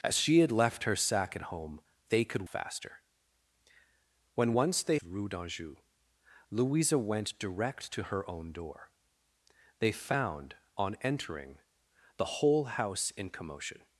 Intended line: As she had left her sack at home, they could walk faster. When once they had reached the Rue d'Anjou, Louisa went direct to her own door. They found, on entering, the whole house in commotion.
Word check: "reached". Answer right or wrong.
wrong